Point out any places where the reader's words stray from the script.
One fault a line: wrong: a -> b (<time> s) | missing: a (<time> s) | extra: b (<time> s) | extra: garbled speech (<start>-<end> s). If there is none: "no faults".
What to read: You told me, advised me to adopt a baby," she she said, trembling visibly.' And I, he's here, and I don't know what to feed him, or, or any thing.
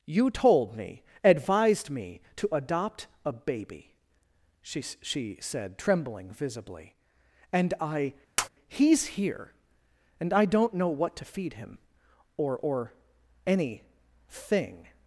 no faults